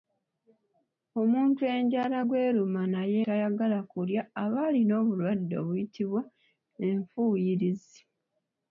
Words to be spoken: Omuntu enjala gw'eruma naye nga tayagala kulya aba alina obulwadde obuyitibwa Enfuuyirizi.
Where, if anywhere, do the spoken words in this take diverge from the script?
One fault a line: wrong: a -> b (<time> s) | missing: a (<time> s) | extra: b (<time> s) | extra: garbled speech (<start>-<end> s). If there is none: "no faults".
missing: nga (3.2 s)